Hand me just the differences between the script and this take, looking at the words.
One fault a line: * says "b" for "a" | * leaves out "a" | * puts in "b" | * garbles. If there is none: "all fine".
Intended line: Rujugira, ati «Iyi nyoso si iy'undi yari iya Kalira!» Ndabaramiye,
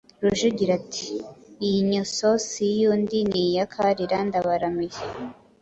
* says "ni" for "yari"